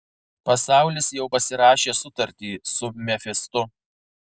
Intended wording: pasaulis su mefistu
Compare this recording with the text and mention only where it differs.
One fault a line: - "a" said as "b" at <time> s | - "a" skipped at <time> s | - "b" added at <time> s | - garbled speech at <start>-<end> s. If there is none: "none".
- "jau pasirašė sutartį" added at 1.2 s